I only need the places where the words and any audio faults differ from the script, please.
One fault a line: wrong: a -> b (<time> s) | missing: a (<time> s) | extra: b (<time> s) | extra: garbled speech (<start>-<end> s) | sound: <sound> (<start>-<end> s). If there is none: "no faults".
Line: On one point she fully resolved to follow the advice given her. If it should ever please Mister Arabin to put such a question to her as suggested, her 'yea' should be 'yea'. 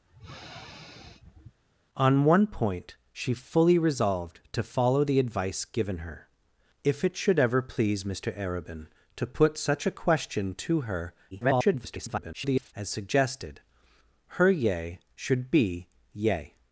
sound: sniff (0.1-1.6 s)
extra: garbled speech (11.3-12.7 s)